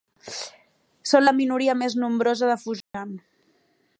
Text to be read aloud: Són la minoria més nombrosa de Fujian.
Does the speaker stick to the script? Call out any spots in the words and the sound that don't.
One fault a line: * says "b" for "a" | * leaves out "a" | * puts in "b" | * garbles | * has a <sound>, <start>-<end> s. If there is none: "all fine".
* has a dropout, 2.8-2.9 s